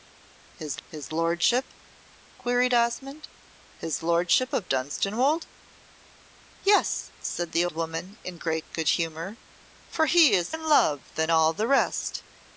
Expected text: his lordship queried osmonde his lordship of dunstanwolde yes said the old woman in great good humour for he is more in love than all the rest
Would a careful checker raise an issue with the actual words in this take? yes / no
yes